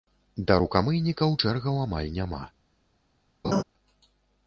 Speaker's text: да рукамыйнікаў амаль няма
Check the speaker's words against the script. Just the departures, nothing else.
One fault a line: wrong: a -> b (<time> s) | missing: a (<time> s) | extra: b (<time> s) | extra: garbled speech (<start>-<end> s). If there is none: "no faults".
extra: чэргаў (1.4 s)